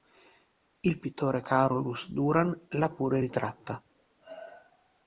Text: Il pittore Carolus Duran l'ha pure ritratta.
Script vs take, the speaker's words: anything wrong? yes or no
no